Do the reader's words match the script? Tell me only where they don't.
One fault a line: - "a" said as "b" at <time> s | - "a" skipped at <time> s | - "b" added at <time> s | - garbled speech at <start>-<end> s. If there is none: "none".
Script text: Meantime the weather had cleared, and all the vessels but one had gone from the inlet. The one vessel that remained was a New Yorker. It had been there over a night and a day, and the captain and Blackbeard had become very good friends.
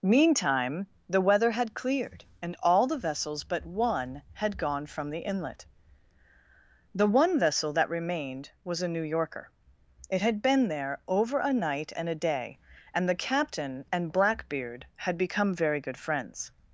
none